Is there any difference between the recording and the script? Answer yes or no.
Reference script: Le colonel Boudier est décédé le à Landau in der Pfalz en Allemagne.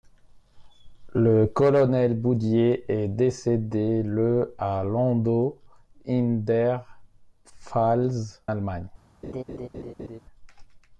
yes